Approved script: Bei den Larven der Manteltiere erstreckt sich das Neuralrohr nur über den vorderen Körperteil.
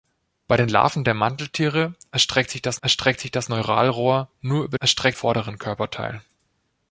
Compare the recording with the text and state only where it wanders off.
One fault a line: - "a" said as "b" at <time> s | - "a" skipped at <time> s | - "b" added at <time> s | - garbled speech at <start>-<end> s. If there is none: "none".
- "erstreckt sich das" added at 2.8 s
- "den" said as "erstreckt" at 4.8 s